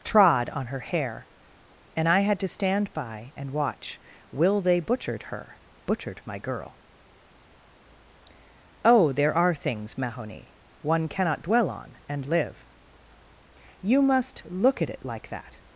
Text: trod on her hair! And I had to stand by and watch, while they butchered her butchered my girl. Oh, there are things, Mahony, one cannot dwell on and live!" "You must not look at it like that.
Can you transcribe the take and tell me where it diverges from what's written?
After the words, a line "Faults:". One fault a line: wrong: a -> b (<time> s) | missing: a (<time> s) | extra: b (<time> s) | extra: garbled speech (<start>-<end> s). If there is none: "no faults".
trod on her hair! And I had to stand by and watch, will they butchered her butchered my girl. Oh, there are things, Mahony, one cannot dwell on and live!" "You must look at it like that.
Faults:
wrong: while -> will (4.3 s)
missing: not (14.4 s)